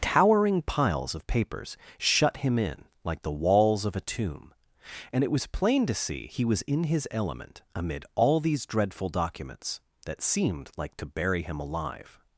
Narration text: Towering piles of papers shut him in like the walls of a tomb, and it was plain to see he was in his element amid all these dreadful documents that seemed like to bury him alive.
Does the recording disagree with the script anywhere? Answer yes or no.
no